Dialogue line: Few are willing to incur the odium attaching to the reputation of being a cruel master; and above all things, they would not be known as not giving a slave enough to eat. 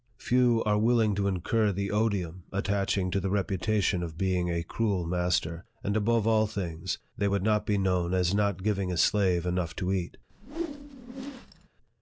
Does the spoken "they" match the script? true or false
true